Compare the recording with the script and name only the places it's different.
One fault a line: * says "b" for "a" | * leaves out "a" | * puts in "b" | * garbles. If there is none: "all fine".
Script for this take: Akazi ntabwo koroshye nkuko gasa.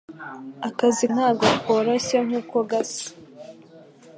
all fine